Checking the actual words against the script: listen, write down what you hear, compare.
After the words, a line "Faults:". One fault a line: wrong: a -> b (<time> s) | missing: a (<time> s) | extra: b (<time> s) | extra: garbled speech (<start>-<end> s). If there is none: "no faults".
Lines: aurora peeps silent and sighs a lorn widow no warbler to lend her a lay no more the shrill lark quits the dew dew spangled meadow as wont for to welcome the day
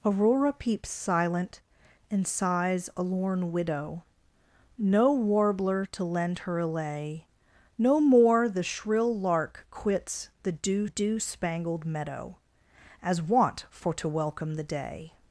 aurora peeps silent and sighs a lorn widow no warbler to lend her a lay no more the shrill lark quits the dew dew spangled meadow as wont for to welcome the day
Faults:
no faults